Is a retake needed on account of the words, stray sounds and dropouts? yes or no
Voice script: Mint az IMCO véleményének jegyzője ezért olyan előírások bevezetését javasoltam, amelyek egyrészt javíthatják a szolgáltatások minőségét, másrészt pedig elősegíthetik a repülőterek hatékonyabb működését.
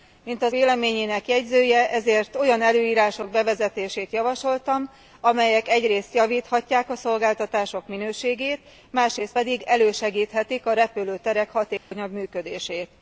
yes